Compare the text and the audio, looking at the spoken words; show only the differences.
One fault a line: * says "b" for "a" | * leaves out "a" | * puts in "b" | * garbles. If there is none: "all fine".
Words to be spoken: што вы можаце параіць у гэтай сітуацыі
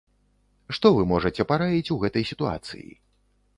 all fine